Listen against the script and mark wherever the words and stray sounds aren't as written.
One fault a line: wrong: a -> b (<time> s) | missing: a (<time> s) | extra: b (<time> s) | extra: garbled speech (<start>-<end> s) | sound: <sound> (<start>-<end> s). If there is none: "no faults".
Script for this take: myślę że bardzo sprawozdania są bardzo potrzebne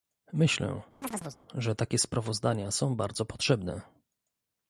sound: chirp (1.0-1.4 s)
wrong: bardzo -> takie (1.7 s)